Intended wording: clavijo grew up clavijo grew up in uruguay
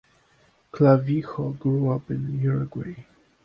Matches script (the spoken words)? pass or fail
fail